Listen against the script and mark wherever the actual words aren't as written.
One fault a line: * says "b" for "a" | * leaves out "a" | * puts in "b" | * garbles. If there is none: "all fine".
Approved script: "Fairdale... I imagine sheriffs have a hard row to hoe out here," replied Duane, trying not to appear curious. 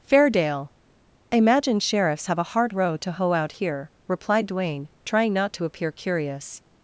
all fine